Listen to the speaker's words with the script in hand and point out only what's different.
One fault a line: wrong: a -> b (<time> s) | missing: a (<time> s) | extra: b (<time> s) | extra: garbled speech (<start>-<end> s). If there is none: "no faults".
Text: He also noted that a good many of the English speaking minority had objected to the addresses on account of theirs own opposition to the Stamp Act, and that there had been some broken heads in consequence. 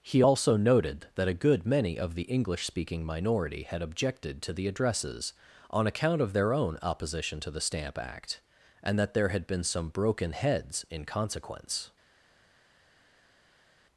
wrong: theirs -> their (6.3 s)